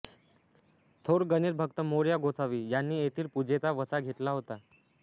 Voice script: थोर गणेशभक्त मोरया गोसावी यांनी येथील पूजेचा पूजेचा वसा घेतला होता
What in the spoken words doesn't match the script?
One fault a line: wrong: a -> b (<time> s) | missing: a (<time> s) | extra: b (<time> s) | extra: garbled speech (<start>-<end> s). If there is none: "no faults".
missing: पूजेचा (3.7 s)